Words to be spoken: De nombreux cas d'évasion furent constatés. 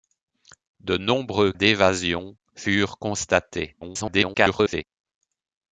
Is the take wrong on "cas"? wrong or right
wrong